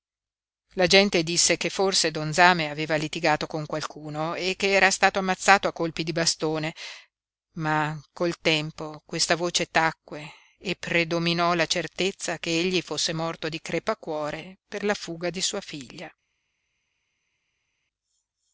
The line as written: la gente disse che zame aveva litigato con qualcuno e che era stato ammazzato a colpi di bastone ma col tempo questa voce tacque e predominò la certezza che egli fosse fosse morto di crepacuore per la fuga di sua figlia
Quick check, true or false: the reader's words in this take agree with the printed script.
false